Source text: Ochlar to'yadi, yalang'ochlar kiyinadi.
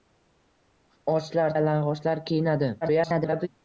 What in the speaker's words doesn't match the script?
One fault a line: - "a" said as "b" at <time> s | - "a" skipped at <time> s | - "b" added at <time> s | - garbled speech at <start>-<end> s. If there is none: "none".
- "to'yadi" skipped at 1.6 s
- garbled speech at 2.8-3.5 s